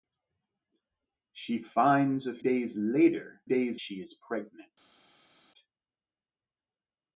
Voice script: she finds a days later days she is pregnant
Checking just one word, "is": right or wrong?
right